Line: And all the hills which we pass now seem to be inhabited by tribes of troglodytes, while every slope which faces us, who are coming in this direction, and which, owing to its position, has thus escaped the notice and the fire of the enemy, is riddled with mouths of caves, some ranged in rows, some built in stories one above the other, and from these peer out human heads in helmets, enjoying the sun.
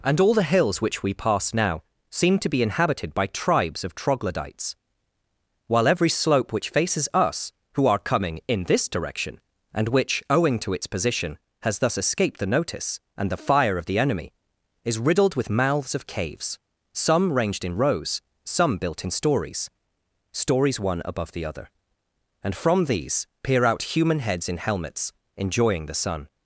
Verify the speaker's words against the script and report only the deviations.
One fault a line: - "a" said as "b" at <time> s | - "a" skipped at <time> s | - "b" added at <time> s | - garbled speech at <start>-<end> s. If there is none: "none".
- "stories" added at 20.3 s